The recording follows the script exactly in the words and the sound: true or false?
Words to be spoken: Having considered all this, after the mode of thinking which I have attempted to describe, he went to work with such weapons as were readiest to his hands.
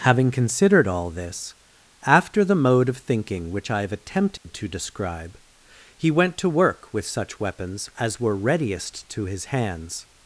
false